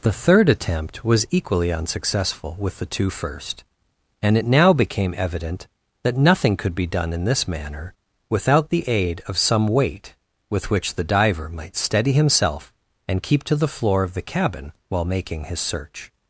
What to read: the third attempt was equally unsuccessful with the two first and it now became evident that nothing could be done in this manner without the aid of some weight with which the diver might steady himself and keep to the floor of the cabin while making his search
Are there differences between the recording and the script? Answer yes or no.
no